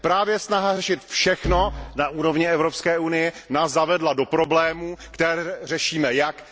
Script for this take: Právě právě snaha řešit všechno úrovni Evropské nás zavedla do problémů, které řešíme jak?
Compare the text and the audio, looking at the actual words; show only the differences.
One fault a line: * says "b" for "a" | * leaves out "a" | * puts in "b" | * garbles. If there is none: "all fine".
* leaves out "právě"
* puts in "na"
* puts in "unie"